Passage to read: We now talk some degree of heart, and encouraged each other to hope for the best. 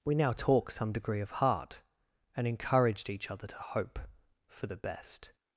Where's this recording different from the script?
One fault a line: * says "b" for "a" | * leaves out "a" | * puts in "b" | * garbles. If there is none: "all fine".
all fine